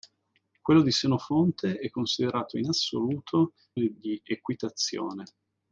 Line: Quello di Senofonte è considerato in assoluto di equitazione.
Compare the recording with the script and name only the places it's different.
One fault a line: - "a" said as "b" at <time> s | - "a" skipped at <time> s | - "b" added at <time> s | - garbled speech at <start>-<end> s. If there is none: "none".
none